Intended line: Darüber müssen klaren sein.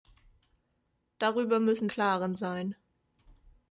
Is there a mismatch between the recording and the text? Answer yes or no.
no